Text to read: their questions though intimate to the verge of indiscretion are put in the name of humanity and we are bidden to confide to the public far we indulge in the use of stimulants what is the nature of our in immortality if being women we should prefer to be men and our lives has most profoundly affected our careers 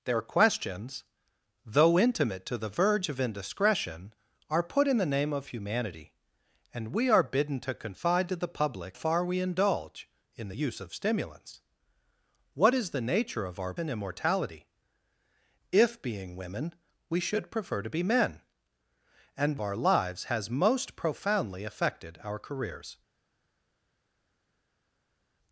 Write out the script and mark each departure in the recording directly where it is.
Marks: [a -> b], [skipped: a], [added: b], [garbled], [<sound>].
their questions though intimate to the verge of indiscretion are put in the name of humanity and we are bidden to confide to the public far we indulge in the use of stimulants what is the nature of our in immortality if being women we should prefer to be men and our lives has most profoundly affected our careers